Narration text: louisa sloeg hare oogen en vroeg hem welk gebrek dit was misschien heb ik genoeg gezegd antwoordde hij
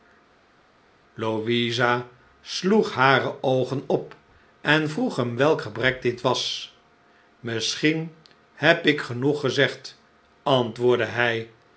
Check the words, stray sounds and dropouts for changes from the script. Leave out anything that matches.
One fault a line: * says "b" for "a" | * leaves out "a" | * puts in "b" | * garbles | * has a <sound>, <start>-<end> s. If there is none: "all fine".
* puts in "op"